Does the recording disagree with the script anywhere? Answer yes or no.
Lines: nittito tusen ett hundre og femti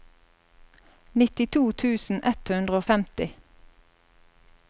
no